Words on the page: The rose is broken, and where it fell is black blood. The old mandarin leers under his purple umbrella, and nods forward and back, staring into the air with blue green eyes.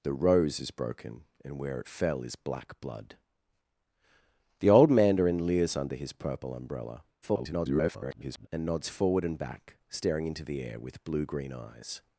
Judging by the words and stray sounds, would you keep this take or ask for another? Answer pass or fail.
fail